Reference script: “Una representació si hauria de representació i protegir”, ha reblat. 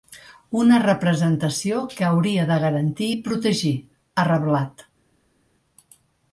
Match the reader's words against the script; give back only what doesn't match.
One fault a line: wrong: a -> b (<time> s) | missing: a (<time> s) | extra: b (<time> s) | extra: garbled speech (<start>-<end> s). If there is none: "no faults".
wrong: si -> que (1.9 s)
wrong: representació -> garantir (2.7 s)